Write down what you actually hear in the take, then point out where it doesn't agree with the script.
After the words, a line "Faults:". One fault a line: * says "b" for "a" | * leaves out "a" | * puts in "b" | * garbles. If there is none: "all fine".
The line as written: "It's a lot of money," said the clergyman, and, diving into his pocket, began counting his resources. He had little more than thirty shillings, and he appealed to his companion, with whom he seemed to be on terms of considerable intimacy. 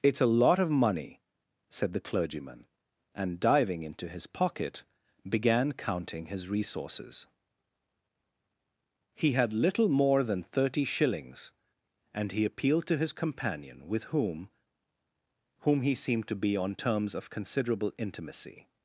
"It's a lot of money," said the clergyman, and, diving into his pocket, began counting his resources. He had little more than thirty shillings, and he appealed to his companion, with whom whom he seemed to be on terms of considerable intimacy.
Faults:
* puts in "whom"